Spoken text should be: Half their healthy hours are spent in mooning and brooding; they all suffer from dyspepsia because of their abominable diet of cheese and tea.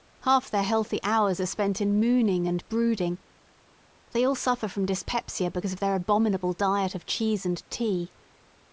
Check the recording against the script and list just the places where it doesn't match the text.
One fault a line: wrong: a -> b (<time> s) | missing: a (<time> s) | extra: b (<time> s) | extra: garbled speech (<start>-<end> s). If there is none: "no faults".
no faults